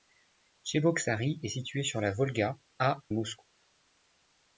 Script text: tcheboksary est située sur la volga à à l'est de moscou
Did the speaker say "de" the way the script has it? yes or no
no